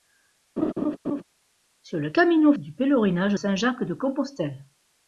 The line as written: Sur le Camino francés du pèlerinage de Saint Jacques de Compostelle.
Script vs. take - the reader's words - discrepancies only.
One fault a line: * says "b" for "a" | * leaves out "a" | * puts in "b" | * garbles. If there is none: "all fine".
* leaves out "francés"
* leaves out "de"